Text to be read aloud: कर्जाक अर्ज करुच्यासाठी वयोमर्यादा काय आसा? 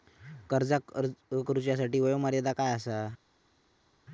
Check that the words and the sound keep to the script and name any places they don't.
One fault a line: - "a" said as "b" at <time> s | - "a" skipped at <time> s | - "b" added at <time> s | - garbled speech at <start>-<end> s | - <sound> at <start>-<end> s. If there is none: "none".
none